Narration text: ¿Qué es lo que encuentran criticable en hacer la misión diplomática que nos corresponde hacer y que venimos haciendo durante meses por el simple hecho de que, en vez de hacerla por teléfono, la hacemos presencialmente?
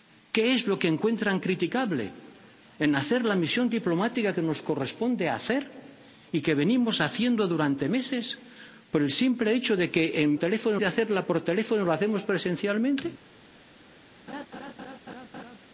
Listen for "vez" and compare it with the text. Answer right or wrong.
wrong